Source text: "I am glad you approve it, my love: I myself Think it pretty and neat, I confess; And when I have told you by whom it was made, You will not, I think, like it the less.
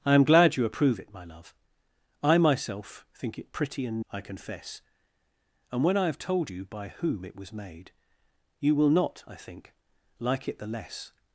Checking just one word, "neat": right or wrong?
wrong